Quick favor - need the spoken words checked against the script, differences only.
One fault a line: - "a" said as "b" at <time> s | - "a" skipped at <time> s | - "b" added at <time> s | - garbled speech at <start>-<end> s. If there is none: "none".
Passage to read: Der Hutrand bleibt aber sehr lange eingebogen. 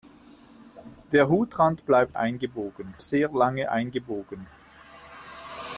- "aber" said as "eingebogen" at 2.1 s